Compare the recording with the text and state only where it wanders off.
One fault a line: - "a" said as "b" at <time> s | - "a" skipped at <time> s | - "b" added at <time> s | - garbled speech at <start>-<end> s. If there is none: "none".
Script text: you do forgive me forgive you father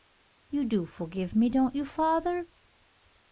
- "forgive" said as "don't" at 1.5 s